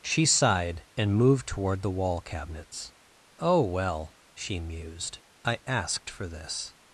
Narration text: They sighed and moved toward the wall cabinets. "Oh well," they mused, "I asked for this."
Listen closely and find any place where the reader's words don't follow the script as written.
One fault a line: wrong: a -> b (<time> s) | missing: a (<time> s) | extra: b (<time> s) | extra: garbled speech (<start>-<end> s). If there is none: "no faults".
wrong: They -> She (0.0 s)
wrong: they -> she (4.4 s)